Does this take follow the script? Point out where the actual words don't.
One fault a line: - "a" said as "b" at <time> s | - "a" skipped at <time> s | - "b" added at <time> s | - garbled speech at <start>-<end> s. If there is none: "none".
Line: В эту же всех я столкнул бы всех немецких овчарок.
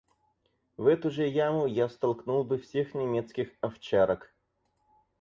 - "всех" said as "яму" at 1.3 s